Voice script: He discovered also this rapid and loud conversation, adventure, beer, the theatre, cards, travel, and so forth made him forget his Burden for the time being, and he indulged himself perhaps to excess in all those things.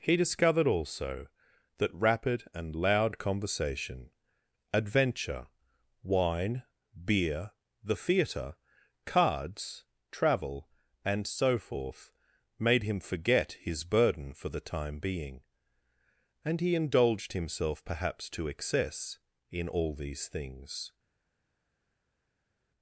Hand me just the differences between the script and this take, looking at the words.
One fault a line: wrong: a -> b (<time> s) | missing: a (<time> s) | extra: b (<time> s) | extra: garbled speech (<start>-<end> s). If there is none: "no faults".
wrong: this -> that (1.8 s)
extra: wine (6.0 s)
wrong: those -> these (19.9 s)